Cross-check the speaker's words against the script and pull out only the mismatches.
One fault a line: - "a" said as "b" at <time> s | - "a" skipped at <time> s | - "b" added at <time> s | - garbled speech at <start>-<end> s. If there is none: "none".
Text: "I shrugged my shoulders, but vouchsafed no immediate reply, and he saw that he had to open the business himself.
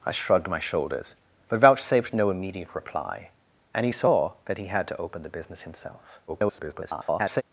- garbled speech at 6.3-7.4 s